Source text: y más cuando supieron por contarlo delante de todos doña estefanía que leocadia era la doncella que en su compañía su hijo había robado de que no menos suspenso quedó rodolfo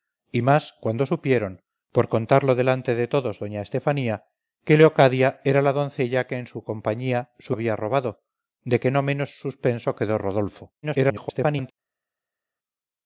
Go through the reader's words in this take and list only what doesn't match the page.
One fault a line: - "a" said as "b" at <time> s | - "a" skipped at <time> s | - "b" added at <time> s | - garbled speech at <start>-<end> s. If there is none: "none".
- "hijo" skipped at 7.5 s
- garbled speech at 10.8-11.7 s